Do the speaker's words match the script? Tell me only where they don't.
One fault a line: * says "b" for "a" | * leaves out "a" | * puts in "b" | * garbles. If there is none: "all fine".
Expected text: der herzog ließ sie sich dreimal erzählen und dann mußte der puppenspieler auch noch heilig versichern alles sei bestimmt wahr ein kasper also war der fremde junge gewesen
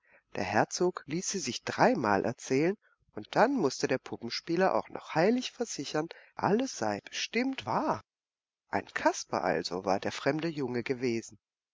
all fine